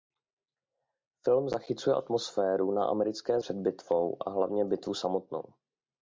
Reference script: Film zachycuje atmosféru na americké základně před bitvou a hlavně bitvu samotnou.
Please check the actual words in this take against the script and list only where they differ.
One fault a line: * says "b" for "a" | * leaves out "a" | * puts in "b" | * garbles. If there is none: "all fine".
* leaves out "základně"